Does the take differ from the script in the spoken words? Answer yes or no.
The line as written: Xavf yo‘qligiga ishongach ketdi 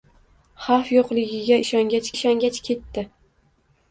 yes